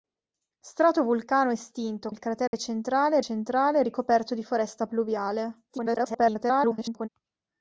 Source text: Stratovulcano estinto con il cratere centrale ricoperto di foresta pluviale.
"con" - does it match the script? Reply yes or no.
no